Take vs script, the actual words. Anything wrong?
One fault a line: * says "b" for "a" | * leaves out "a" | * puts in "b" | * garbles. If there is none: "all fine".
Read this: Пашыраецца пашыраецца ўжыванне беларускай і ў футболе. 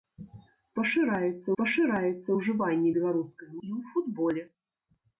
all fine